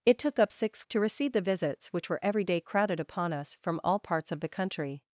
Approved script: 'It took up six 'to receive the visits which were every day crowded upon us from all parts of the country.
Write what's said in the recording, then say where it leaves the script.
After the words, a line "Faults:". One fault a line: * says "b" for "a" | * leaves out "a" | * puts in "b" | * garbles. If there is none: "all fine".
'It took up six 'to receive the visits which were every day crowded upon us from all parts of the country.
Faults:
all fine